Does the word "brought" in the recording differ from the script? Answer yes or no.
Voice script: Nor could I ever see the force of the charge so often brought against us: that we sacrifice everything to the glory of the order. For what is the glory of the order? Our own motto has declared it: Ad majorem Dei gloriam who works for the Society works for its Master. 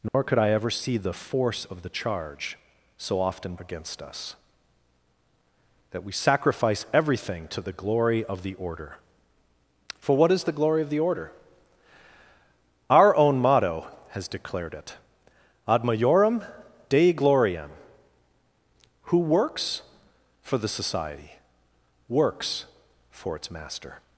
yes